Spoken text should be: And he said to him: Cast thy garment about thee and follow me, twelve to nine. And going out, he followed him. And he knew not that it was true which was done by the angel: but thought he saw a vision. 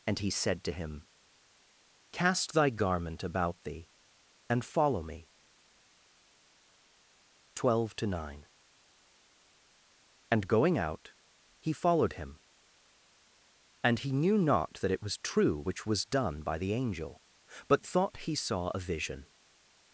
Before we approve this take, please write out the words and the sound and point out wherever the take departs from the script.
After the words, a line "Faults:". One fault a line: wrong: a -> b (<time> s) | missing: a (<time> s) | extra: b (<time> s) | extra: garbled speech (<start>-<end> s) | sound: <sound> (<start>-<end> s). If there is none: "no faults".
And he said to him: Cast thy garment about thee and follow me, twelve to nine. And going out, he followed him. And he knew not that it was true which was done by the angel: but thought he saw a vision.
Faults:
no faults